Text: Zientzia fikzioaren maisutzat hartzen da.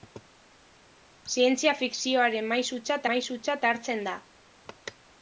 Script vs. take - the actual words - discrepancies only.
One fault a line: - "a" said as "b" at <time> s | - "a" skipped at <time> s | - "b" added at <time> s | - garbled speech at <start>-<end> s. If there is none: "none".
- "maisutzat" added at 3.1 s